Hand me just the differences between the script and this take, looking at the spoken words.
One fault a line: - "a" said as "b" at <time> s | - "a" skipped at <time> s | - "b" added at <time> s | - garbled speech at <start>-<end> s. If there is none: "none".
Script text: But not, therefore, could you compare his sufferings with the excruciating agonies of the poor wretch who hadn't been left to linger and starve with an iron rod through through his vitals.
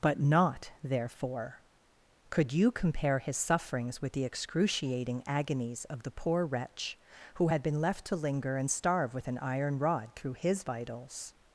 - "hadn't" said as "had" at 7.5 s
- "through" skipped at 10.3 s